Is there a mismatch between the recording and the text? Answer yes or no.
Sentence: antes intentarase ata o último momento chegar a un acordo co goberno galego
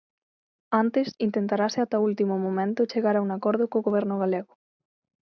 no